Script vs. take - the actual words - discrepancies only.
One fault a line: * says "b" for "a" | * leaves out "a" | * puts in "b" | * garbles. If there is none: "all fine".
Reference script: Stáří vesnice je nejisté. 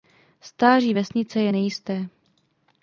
all fine